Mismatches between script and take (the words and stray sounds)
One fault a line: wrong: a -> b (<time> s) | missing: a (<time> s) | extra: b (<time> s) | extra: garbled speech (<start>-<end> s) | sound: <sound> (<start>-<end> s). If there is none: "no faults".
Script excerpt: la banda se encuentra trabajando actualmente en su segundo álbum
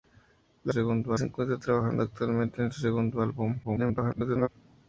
wrong: banda -> segundo (0.7 s)
extra: garbled speech (3.6-4.5 s)